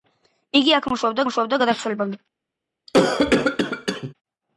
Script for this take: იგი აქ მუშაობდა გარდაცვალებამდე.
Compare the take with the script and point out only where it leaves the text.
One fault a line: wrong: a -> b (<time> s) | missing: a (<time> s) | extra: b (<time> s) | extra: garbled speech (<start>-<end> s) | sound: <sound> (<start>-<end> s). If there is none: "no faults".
extra: მუშაობდა (1.3 s)
sound: cough (2.9-4.1 s)